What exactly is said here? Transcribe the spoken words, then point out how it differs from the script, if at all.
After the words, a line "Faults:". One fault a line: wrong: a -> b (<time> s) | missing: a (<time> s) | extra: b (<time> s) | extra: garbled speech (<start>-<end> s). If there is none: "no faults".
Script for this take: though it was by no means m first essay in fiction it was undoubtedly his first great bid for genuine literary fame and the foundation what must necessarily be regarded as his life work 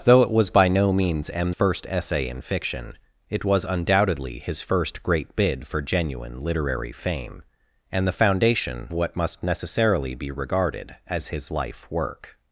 though it was by no means m first essay in fiction it was undoubtedly his first great bid for genuine literary fame and the foundation what must necessarily be regarded as his life work
Faults:
no faults